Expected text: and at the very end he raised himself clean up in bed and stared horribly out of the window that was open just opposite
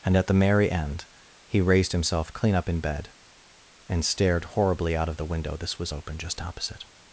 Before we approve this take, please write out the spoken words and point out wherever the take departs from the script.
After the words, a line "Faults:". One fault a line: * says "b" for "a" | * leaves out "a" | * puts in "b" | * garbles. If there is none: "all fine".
and at the merry end he raised himself clean up in bed and stared horribly out of the window this was open just opposite
Faults:
* says "merry" for "very"
* says "this" for "that"